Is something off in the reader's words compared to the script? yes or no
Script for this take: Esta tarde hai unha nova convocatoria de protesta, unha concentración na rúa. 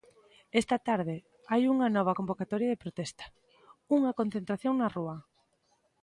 no